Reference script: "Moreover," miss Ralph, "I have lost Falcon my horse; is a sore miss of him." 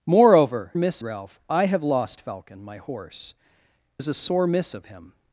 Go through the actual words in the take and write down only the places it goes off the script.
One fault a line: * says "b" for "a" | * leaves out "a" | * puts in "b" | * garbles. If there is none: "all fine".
all fine